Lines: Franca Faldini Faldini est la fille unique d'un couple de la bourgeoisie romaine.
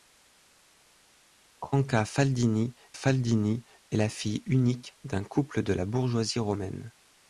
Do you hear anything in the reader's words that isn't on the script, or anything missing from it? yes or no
no